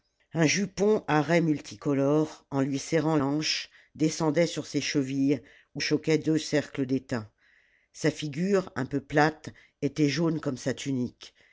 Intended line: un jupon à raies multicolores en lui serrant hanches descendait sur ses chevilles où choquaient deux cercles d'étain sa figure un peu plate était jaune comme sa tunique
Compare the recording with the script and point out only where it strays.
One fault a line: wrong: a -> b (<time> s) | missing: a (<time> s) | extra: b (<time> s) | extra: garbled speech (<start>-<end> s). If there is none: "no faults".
no faults